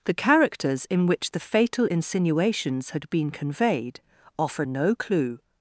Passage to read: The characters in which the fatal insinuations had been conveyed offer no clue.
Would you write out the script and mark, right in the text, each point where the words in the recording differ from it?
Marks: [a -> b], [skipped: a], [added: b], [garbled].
The characters in which the fatal insinuations had been conveyed offer no clue.